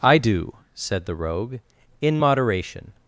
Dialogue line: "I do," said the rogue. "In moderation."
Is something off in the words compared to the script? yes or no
no